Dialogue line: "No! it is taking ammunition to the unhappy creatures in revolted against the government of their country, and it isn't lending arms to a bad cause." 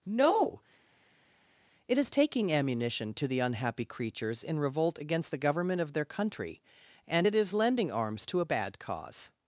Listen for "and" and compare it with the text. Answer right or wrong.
right